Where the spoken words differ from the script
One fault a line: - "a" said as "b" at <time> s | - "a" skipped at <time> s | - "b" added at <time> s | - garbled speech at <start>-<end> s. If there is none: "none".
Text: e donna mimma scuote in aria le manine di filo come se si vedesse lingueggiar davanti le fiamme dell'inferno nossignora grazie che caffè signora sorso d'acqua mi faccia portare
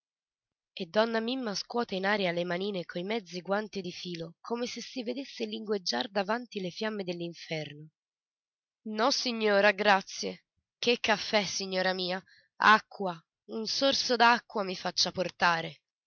- "coi mezzi guanti" added at 2.9 s
- "mia acqua un" added at 11.9 s